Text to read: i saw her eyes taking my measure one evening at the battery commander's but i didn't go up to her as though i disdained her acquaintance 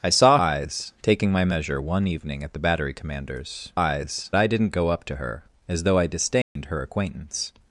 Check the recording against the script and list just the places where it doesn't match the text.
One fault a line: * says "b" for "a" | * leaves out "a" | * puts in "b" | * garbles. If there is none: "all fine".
* leaves out "her"
* says "eyes" for "but"